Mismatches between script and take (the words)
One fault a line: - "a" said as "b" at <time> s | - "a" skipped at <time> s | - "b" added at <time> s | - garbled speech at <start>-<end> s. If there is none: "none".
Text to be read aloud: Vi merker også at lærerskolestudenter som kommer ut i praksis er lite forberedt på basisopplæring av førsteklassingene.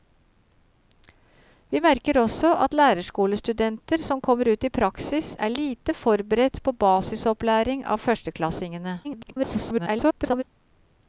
- garbled speech at 9.0-10.4 s